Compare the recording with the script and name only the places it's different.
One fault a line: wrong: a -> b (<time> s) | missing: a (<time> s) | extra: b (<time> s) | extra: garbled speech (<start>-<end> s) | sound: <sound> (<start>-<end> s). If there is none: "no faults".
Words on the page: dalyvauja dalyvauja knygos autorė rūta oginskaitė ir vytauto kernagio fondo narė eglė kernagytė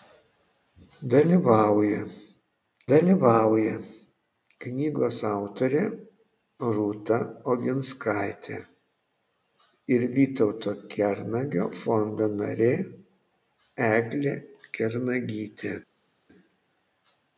no faults